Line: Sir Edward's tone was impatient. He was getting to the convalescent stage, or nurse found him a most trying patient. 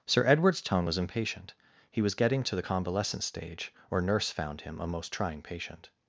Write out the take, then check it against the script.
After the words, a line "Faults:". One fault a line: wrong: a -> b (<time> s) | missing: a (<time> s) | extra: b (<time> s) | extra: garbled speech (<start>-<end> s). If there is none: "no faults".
Sir Edward's tone was impatient. He was getting to the convalescent stage, or nurse found him a most trying patient.
Faults:
no faults